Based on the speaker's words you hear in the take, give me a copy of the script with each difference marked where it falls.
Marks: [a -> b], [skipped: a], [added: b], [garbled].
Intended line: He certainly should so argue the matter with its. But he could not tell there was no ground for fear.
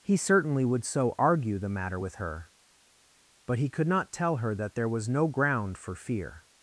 He certainly [should -> would] so argue the matter with [its. -> her] But he could not tell [added: her that] there was no ground for fear.